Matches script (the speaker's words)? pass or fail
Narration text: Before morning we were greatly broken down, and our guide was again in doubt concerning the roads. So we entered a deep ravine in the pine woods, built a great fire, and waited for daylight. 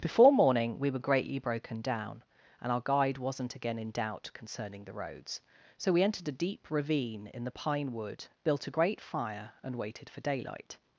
fail